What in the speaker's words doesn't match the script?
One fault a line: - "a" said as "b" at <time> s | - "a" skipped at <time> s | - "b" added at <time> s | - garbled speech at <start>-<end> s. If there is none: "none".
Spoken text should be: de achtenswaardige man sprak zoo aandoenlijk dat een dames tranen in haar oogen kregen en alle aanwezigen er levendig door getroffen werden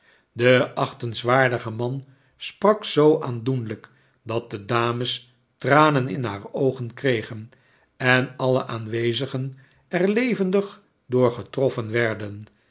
- "een" said as "de" at 4.5 s